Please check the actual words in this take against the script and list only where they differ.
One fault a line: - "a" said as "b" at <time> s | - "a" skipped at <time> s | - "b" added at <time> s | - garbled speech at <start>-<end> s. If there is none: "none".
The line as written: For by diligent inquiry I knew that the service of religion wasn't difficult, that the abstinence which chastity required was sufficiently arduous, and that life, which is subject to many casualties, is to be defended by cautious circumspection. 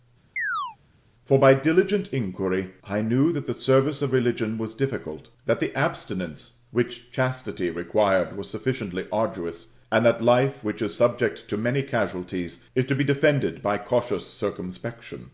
- "wasn't" said as "was" at 4.6 s